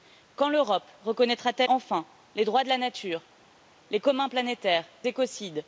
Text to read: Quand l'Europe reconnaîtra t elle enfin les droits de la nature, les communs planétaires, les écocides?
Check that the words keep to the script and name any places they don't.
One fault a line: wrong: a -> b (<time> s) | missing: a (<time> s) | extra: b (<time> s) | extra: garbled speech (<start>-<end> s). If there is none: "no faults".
missing: elle (1.6 s)
missing: les (4.9 s)